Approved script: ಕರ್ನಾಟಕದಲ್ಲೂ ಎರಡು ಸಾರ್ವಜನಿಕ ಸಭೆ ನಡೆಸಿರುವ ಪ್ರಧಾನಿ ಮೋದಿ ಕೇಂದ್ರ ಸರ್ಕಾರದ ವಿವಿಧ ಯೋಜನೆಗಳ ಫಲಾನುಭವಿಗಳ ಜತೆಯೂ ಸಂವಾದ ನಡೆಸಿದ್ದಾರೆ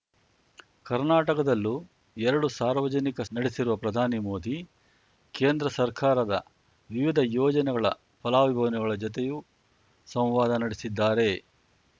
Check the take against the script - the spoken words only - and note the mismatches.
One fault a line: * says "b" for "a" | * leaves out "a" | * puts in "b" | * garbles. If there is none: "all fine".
* leaves out "ಸಭೆ"